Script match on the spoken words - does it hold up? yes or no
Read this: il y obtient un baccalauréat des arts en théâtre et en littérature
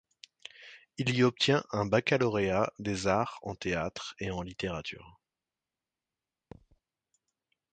yes